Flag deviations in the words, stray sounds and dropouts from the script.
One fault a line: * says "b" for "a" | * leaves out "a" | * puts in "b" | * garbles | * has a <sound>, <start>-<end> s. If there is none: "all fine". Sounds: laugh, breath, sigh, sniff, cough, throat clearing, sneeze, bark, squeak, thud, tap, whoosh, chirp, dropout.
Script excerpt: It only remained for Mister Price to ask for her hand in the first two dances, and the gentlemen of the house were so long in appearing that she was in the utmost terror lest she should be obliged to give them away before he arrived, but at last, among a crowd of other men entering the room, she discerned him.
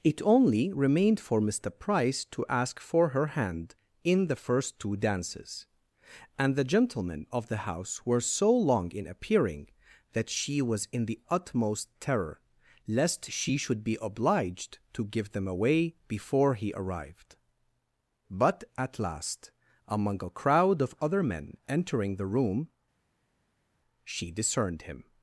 all fine